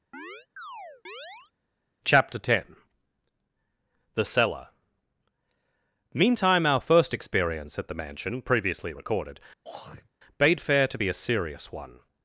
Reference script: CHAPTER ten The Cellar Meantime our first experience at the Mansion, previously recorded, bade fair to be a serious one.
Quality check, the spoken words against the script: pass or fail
pass